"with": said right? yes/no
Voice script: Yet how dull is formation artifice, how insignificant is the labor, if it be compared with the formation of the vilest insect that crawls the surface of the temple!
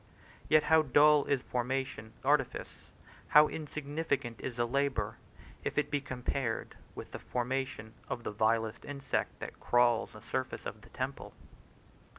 yes